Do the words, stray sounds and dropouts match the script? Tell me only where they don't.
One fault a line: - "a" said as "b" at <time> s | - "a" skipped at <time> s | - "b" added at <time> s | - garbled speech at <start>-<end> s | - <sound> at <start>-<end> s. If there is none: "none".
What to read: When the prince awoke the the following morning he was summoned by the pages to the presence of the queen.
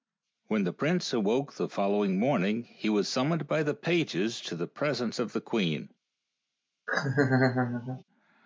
- "the" skipped at 1.7 s
- laugh at 6.9-8.0 s